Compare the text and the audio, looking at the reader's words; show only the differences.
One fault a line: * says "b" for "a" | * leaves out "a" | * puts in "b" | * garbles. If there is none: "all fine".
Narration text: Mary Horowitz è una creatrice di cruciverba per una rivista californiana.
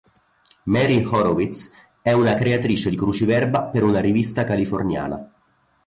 all fine